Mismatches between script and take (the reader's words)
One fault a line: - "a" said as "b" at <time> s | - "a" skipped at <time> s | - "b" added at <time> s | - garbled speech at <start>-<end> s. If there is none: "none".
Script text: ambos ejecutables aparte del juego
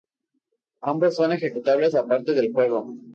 - "son" added at 1.1 s